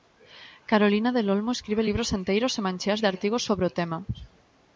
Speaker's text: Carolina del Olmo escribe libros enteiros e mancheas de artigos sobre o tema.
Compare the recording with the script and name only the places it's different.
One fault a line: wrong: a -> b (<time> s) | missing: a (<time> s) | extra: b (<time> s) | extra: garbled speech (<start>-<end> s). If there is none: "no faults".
no faults